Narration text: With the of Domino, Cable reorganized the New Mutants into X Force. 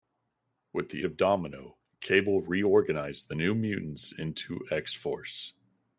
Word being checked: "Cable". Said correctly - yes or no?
yes